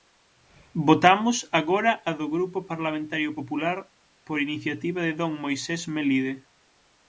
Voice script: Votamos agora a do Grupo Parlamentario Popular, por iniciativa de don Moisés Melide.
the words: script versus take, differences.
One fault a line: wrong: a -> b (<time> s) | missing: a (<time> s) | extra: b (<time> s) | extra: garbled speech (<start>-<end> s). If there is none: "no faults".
no faults